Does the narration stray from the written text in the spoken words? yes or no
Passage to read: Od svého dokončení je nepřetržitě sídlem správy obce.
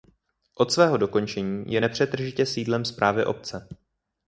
no